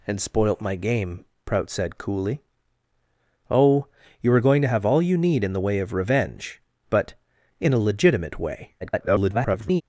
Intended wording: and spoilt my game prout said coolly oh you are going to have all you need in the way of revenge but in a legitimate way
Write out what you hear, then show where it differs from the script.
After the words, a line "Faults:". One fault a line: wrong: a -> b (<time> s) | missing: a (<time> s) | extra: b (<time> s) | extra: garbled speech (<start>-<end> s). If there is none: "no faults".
and spoilt my game prout said coolly oh you are going to have all you need in the way of revenge but in a legitimate way [garbled]
Faults:
extra: garbled speech (8.8-9.8 s)